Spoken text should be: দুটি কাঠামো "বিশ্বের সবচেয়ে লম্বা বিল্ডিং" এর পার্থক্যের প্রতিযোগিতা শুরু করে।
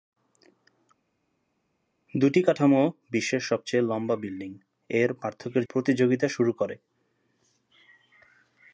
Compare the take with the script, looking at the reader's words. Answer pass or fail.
pass